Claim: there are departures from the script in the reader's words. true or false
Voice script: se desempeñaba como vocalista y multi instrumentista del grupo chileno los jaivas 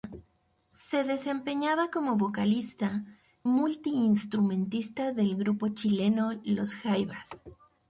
true